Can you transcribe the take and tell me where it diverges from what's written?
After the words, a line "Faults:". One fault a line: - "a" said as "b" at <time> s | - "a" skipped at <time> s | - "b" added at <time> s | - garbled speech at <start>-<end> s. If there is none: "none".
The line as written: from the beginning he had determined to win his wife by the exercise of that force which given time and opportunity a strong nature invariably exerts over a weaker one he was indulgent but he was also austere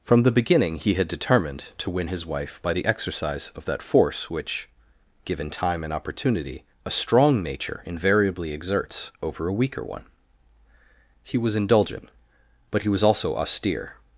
from the beginning he had determined to win his wife by the exercise of that force which given time and opportunity a strong nature invariably exerts over a weaker one he was indulgent but he was also austere
Faults:
none